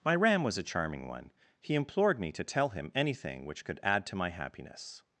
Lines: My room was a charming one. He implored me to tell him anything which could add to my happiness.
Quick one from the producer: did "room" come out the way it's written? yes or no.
no